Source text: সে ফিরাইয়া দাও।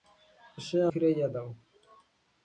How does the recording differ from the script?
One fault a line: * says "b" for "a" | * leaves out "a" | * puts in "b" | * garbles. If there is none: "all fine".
all fine